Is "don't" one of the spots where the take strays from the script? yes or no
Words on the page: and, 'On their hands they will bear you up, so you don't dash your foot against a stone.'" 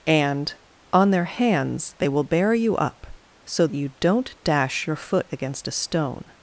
no